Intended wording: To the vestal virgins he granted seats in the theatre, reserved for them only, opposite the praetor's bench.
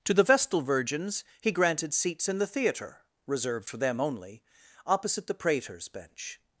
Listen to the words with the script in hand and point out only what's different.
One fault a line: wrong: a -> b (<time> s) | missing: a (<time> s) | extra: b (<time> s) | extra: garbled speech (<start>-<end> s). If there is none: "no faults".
no faults